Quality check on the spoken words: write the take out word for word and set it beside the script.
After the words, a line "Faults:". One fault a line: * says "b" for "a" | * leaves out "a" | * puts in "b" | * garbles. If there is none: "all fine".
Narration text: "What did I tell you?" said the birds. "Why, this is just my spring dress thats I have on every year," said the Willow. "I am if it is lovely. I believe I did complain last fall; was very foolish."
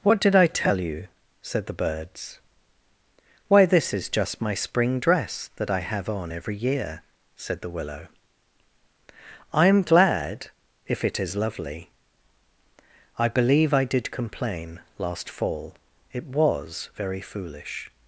"What did I tell you?" said the birds. "Why, this is just my spring dress that I have on every year," said the Willow. "I am glad if it is lovely. I believe I did complain last fall; it was very foolish."
Faults:
* says "that" for "thats"
* puts in "glad"
* puts in "it"